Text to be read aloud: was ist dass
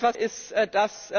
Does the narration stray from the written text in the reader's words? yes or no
no